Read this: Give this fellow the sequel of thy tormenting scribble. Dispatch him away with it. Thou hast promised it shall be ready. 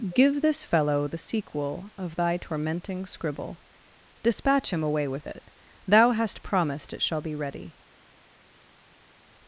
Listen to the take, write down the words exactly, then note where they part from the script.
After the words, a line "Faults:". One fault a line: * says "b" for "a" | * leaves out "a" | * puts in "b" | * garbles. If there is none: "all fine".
Give this fellow the sequel of thy tormenting scribble. Dispatch him away with it. Thou hast promised it shall be ready.
Faults:
all fine